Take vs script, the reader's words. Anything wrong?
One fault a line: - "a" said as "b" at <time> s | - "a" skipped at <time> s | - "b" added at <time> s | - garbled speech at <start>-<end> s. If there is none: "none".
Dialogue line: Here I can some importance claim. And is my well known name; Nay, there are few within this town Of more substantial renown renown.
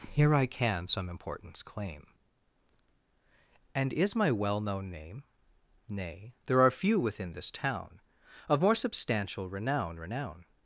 none